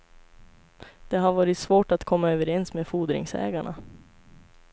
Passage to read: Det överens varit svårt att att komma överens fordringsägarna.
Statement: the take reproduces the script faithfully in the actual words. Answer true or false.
false